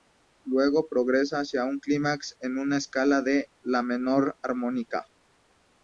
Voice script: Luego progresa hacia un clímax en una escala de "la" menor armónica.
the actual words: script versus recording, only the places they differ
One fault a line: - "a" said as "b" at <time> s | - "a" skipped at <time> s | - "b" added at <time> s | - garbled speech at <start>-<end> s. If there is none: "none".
none